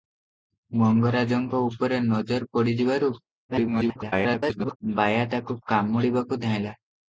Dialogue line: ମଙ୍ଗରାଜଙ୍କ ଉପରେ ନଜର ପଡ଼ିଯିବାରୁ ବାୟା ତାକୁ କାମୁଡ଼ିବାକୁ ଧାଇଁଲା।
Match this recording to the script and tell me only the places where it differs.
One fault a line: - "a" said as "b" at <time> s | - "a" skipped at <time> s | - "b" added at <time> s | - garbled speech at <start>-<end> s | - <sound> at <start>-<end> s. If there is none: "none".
- garbled speech at 3.5-4.8 s